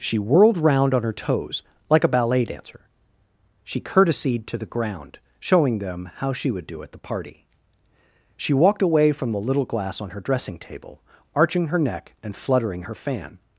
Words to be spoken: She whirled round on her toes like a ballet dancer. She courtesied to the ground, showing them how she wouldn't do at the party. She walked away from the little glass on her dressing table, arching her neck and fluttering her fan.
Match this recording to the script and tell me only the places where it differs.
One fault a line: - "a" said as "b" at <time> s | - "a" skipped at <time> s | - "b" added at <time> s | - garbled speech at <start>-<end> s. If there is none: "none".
- "wouldn't" said as "would" at 6.5 s